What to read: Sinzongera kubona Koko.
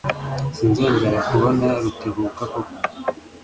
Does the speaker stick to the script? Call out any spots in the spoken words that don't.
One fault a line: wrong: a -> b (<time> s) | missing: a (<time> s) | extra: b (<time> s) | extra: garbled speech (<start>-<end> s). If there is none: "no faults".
extra: Rutebuka (1.8 s)